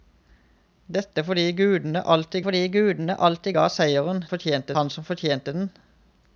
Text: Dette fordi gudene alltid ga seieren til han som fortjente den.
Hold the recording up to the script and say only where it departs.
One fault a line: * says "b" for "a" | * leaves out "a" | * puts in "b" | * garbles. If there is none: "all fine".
* puts in "fordi gudene alltid"
* says "fortjente" for "til"